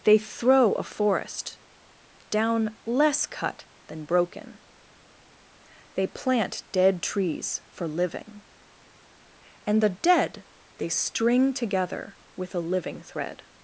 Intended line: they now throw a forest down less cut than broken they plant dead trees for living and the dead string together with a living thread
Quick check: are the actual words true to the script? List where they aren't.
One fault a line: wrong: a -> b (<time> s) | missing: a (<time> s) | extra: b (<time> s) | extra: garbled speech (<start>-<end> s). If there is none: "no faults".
missing: now (0.2 s)
extra: they (10.8 s)